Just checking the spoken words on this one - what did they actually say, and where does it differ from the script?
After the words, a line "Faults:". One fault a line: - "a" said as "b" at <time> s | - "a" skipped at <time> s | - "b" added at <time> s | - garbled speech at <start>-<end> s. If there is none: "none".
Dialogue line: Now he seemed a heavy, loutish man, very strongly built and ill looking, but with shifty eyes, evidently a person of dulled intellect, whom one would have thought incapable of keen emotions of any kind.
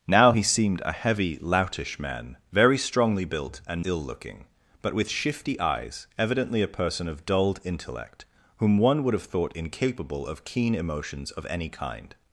Now he seemed a heavy, loutish man, very strongly built and ill looking, but with shifty eyes, evidently a person of dulled intellect, whom one would have thought incapable of keen emotions of any kind.
Faults:
none